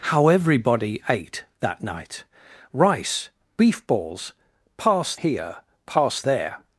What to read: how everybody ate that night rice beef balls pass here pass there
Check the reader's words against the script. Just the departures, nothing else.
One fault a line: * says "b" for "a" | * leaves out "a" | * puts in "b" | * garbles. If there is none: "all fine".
all fine